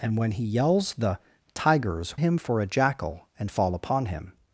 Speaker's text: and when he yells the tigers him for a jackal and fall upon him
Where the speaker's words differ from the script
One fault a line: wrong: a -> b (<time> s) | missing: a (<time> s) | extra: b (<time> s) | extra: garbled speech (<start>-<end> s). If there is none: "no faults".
no faults